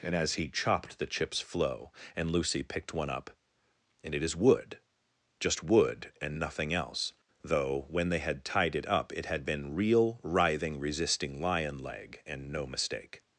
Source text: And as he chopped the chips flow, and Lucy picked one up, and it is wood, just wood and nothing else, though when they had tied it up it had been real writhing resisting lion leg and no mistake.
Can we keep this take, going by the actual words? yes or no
yes